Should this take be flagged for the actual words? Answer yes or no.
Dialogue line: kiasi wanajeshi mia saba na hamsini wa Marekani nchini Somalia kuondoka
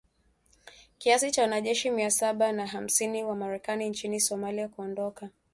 yes